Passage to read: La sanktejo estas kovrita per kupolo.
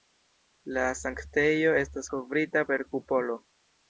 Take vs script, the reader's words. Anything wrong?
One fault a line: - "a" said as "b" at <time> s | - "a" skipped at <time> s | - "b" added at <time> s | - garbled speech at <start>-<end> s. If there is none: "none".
none